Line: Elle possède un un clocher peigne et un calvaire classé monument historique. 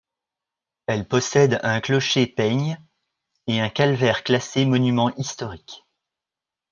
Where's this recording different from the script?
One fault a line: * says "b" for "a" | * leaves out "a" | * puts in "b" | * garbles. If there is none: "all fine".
* leaves out "un"